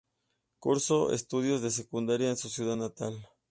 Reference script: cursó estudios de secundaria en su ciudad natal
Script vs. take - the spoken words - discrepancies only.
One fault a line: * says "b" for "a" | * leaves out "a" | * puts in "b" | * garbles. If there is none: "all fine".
all fine